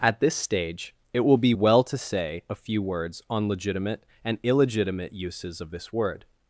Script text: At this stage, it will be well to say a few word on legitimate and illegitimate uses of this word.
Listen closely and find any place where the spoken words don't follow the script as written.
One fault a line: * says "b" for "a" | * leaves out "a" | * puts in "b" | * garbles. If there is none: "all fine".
* says "words" for "word"